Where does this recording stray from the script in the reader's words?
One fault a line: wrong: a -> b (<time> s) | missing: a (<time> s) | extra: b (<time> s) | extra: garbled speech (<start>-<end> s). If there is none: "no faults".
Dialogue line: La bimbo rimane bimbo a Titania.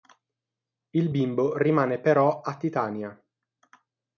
wrong: La -> Il (0.9 s)
wrong: bimbo -> però (2.0 s)